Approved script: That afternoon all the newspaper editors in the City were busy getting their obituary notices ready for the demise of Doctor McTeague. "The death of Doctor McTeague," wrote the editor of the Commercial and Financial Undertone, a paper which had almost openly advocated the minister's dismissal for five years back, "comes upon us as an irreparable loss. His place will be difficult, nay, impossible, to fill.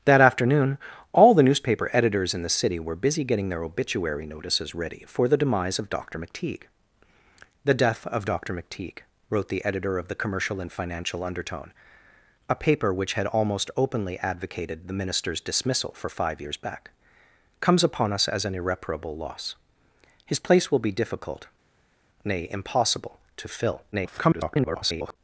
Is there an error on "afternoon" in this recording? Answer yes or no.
no